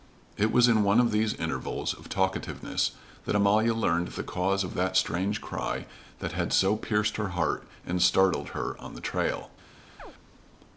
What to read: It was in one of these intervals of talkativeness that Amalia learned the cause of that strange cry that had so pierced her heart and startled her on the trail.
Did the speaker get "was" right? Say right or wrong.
right